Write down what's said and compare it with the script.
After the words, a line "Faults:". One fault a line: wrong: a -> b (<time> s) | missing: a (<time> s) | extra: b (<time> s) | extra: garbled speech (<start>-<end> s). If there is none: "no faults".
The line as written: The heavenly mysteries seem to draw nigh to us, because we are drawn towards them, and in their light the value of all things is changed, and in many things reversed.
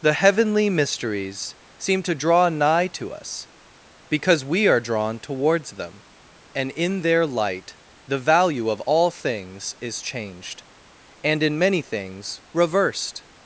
The heavenly mysteries seem to draw nigh to us, because we are drawn towards them, and in their light the value of all things is changed, and in many things reversed.
Faults:
no faults